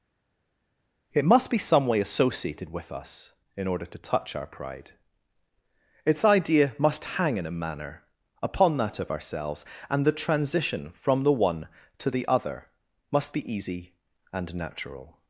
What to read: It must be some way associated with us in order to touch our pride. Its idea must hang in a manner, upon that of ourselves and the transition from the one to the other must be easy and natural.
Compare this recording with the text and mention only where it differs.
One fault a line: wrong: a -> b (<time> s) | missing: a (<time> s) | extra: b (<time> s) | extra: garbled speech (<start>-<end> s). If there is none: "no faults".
no faults